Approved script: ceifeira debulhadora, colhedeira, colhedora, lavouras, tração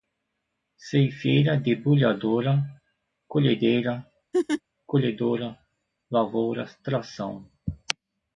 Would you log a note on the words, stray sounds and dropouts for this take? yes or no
yes